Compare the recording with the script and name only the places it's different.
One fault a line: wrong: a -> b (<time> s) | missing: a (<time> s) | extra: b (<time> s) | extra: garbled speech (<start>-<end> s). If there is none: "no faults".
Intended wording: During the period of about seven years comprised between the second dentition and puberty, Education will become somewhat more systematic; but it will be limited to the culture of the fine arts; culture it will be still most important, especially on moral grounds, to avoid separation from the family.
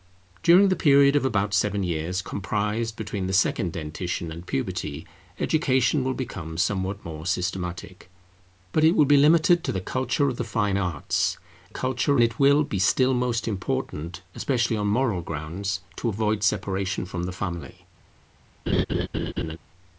no faults